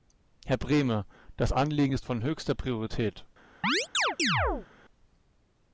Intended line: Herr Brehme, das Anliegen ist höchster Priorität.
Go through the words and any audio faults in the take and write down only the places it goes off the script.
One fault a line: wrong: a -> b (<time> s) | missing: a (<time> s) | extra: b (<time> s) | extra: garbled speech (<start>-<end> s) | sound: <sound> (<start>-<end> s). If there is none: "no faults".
extra: von (2.0 s)
sound: chirp (3.6-4.7 s)